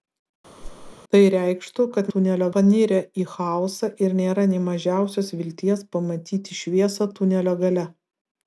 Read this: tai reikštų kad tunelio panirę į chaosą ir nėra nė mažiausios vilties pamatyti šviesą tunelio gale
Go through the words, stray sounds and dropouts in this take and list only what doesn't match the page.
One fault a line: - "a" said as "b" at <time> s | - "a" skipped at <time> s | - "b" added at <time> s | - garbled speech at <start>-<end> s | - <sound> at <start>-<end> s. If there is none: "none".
- whoosh at 0.6-1.0 s